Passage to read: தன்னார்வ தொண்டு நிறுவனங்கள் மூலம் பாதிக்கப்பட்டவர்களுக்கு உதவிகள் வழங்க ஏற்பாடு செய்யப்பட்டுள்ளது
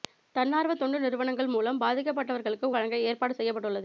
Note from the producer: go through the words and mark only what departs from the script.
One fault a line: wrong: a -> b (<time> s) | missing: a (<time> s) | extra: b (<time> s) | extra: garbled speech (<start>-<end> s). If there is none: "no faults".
missing: உதவிகள் (2.7 s)